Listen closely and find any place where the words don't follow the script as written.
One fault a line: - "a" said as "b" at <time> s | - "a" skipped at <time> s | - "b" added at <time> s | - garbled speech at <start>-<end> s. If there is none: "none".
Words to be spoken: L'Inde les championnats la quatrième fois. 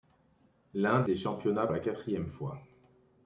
none